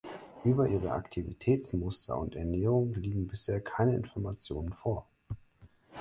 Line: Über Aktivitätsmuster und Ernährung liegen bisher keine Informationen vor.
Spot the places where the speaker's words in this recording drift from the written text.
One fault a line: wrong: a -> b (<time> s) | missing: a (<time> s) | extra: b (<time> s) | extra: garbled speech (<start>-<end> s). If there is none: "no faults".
extra: ihre (0.6 s)